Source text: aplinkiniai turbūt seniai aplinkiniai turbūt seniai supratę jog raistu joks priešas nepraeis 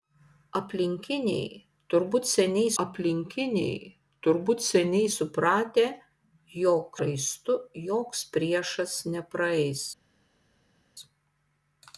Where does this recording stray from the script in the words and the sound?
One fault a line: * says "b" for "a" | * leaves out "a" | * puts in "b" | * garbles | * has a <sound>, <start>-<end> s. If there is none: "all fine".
all fine